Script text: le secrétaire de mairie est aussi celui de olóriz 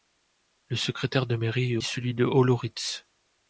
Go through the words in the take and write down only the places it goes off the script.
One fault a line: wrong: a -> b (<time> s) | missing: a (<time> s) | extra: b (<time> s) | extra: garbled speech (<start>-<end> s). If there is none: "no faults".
missing: aussi (1.8 s)